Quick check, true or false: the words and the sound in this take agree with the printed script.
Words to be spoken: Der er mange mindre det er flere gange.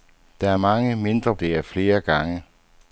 true